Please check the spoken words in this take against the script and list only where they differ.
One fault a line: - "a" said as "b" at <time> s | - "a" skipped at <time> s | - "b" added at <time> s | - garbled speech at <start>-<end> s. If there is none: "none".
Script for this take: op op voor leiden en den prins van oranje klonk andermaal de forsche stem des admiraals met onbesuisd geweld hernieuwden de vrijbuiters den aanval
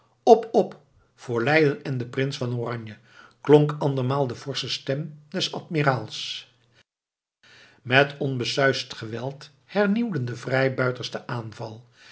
none